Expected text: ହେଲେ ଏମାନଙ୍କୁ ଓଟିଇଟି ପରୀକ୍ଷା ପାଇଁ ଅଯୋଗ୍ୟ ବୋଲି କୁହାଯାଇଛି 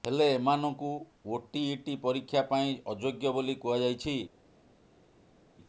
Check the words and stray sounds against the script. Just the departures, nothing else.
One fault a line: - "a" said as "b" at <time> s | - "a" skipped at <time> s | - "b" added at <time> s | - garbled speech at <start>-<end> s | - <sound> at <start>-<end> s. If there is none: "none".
none